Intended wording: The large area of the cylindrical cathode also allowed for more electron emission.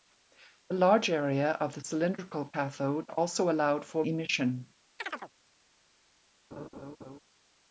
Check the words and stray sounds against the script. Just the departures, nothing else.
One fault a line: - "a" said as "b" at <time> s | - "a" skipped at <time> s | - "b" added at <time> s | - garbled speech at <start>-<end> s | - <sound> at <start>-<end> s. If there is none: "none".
- "more electron" skipped at 4.0 s
- chirp at 5.0-5.3 s
- laugh at 6.5-7.2 s